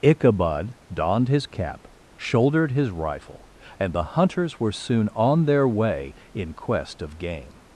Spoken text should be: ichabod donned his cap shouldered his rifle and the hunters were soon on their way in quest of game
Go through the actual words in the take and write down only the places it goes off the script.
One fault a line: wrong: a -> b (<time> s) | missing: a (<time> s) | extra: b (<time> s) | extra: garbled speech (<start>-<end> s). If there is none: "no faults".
no faults